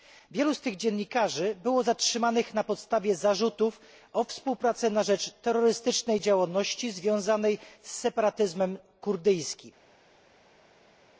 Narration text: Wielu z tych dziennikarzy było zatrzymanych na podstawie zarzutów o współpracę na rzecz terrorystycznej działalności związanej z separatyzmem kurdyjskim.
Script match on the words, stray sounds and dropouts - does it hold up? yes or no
yes